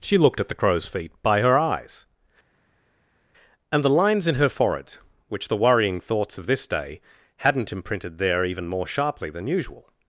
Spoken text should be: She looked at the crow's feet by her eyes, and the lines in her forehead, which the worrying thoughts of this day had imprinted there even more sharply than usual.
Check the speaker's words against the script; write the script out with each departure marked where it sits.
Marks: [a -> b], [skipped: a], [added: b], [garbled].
She looked at the crow's feet by her eyes, and the lines in her forehead, which the worrying thoughts of this day [had -> hadn't] imprinted there even more sharply than usual.